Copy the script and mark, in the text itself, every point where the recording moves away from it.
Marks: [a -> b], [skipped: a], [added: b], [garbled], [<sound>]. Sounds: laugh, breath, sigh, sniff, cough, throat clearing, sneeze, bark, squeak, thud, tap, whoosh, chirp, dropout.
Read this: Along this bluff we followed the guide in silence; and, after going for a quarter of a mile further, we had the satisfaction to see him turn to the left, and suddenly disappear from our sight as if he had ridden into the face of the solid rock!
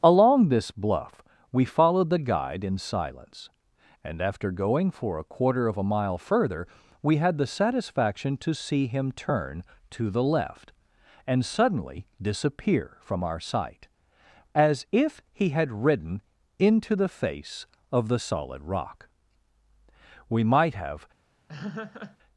Along this bluff we followed the guide in silence; and, after going for a quarter of a mile further, we had the satisfaction to see him turn to the left, and suddenly disappear from our sight as if he had ridden into the face of the solid rock! [added: We might have] [laugh]